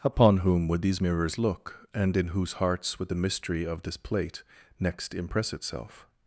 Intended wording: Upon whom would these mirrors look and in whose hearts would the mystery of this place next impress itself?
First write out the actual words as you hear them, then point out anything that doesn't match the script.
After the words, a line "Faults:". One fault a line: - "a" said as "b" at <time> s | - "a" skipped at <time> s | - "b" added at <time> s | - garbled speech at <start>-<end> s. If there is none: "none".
Upon whom would these mirrors look and in whose hearts would the mystery of this plate next impress itself?
Faults:
- "place" said as "plate" at 4.0 s